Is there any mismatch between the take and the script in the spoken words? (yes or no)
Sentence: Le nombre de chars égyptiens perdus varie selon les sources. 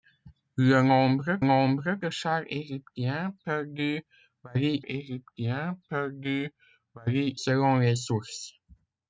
yes